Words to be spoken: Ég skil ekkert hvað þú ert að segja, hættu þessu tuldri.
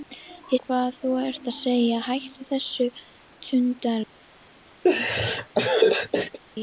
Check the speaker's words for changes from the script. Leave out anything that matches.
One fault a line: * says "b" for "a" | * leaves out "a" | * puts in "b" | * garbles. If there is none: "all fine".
* leaves out "skil ekkert"